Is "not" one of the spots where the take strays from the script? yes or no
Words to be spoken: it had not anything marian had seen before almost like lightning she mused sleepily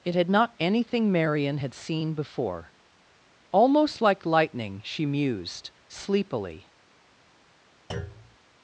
no